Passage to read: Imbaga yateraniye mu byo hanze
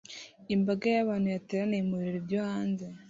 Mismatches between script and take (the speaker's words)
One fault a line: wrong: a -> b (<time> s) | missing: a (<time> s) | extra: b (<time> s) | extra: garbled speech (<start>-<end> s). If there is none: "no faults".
extra: y'abantu (0.9 s)
extra: birori (2.0 s)